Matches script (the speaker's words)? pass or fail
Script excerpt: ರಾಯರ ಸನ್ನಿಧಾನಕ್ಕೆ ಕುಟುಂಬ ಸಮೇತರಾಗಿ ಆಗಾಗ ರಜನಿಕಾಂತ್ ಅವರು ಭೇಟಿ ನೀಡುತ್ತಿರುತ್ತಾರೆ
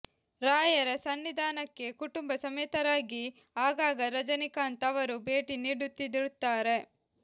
pass